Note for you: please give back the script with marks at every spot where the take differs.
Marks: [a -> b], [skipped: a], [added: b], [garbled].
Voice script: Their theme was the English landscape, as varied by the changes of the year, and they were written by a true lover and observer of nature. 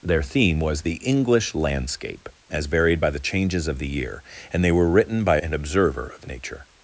Their theme was the English landscape, as varied by the changes of the year, and they were written by [skipped: a true lover] and observer of nature.